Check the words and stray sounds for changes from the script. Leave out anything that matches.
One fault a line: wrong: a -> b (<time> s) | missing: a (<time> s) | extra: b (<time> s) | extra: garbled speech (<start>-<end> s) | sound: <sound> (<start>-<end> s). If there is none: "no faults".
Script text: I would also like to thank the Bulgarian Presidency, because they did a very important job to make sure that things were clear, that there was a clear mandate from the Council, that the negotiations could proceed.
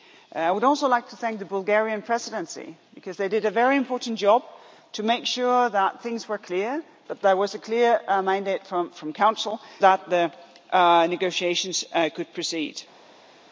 no faults